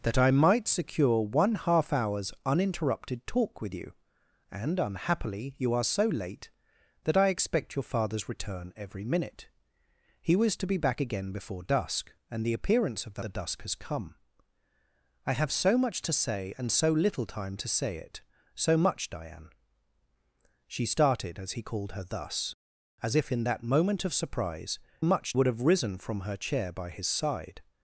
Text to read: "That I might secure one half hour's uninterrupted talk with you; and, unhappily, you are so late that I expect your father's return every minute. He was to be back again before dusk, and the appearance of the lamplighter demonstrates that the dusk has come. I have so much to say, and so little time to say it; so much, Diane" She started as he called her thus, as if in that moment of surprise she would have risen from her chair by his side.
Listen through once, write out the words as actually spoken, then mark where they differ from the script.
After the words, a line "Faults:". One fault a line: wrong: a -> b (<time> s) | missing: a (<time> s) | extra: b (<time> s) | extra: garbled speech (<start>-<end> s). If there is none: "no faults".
"That I might secure one half hour's uninterrupted talk with you; and, unhappily, you are so late that I expect your father's return every minute. He was to be back again before dusk, and the appearance of the the dusk has come. I have so much to say, and so little time to say it; so much, Diane" She started as he called her thus, as if in that moment of surprise much would have risen from her chair by his side.
Faults:
missing: lamplighter demonstrates that (13.2 s)
wrong: she -> much (25.0 s)